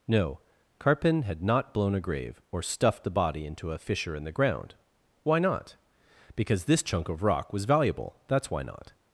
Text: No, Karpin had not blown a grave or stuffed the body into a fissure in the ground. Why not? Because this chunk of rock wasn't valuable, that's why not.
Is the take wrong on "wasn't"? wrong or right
wrong